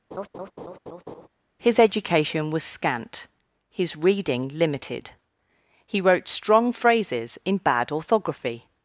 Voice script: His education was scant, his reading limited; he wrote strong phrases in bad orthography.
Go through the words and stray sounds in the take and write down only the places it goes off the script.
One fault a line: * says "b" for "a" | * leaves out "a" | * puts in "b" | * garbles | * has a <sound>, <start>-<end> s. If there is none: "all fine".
* has a laugh, 0.1-1.3 s